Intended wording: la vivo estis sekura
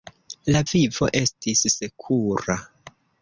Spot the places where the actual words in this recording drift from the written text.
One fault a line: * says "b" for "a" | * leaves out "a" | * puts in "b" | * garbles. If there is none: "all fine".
all fine